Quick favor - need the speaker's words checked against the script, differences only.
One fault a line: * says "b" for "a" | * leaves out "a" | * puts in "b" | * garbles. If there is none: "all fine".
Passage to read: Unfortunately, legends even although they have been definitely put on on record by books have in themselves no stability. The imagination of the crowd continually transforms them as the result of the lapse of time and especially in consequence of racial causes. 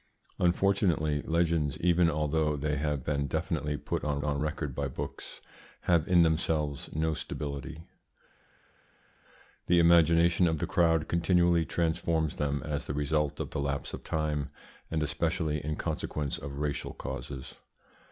all fine